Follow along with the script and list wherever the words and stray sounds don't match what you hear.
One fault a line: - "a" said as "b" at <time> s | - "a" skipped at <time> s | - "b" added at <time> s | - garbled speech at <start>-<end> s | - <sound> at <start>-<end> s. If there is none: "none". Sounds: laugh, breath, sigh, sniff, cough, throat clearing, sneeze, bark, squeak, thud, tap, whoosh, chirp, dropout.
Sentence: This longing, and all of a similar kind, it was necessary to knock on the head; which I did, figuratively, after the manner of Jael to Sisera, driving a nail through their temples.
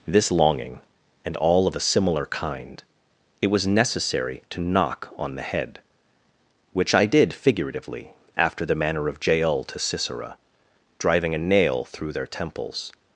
none